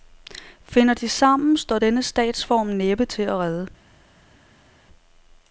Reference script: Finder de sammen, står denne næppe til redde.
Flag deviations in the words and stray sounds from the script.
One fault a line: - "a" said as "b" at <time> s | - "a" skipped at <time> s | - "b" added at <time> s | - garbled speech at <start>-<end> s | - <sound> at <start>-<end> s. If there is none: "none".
- "statsform" added at 2.0 s
- "at" added at 3.2 s